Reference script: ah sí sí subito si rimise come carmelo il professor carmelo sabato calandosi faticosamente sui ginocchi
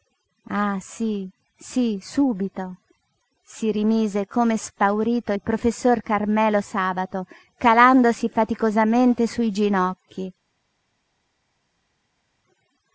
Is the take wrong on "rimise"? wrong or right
right